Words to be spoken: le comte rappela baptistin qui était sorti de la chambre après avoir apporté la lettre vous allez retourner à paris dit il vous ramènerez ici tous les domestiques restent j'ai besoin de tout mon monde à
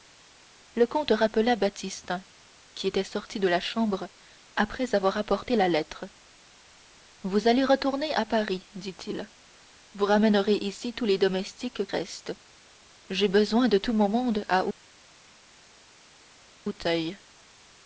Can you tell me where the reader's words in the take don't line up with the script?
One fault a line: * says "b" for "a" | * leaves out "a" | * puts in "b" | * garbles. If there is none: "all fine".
all fine